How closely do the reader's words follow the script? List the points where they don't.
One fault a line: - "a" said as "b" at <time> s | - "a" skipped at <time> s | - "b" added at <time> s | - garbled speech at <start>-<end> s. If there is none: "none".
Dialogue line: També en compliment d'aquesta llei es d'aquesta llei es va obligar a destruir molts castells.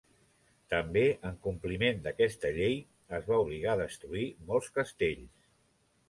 - "d'aquesta llei es" skipped at 3.3 s